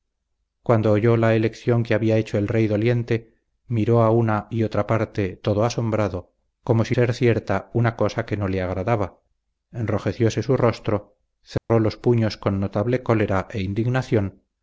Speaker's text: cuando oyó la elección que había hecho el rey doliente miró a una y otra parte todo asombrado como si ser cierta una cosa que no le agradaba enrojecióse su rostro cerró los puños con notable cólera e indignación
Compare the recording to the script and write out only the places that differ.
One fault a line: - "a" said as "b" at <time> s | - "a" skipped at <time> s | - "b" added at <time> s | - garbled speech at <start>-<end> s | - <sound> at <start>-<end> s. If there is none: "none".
- dropout at 11.6-11.7 s